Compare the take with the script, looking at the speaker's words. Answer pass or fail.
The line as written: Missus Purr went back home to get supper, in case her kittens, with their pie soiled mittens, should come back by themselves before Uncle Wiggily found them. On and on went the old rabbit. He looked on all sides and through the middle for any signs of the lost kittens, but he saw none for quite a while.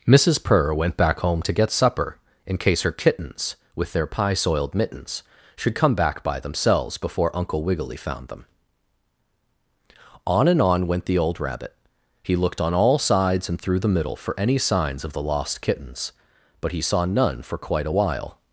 pass